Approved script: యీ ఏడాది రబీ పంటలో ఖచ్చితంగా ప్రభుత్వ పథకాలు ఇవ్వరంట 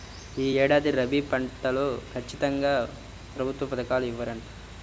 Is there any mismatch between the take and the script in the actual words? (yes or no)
no